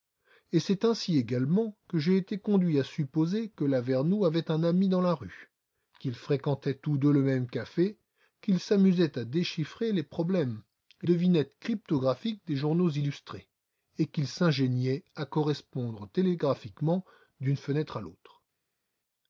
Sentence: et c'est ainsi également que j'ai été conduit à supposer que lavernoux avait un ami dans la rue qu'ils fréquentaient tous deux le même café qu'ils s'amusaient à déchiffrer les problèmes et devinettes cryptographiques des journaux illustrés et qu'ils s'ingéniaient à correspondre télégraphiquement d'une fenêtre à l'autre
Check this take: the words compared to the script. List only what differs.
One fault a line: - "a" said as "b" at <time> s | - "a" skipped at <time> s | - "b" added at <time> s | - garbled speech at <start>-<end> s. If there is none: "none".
none